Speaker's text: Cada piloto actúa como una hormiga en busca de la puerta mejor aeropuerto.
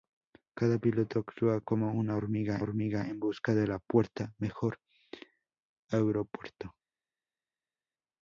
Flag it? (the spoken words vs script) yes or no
yes